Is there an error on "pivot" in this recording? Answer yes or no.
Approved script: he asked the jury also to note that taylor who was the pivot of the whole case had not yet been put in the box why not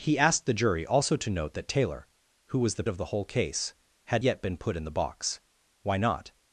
yes